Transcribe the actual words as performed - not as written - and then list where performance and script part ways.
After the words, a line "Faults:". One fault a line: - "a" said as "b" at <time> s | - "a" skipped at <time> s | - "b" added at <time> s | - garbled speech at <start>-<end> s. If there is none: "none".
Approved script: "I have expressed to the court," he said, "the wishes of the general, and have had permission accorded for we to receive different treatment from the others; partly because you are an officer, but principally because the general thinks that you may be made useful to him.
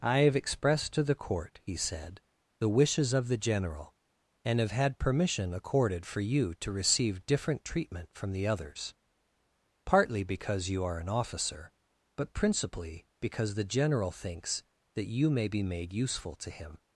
"I have expressed to the court," he said, "the wishes of the general, and have had permission accorded for you to receive different treatment from the others; partly because you are an officer, but principally because the general thinks that you may be made useful to him.
Faults:
- "we" said as "you" at 6.2 s